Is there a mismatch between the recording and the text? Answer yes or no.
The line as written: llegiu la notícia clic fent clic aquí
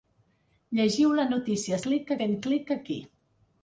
no